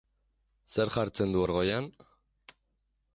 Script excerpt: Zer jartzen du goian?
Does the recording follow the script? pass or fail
fail